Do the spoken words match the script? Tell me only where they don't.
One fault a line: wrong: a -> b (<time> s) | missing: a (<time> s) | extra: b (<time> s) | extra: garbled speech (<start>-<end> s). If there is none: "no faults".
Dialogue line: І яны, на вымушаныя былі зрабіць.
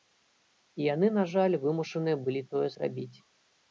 extra: жаль (1.4 s)
extra: тое (2.5 s)